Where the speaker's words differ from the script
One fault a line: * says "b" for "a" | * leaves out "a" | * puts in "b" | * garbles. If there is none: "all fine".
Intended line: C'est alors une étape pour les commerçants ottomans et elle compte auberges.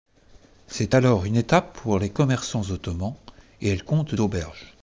all fine